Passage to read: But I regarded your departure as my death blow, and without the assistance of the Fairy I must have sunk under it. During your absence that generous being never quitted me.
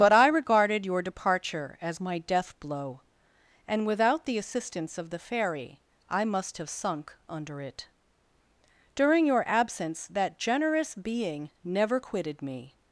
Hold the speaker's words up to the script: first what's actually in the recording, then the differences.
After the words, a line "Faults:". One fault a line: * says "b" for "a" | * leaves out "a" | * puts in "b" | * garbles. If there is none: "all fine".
But I regarded your departure as my death blow, and without the assistance of the Fairy I must have sunk under it. During your absence that generous being never quitted me.
Faults:
all fine